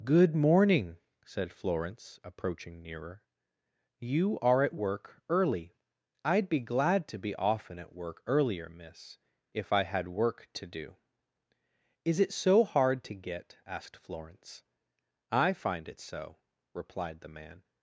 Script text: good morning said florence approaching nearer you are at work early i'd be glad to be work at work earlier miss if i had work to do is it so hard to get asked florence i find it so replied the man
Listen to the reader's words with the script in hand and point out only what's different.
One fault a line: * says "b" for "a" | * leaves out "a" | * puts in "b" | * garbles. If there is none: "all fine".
* says "often" for "work"